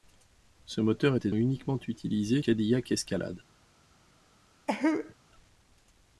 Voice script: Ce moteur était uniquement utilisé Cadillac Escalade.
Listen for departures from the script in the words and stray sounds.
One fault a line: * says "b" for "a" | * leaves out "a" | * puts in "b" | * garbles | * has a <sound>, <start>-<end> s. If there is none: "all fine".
* has a cough, 4.7-5.1 s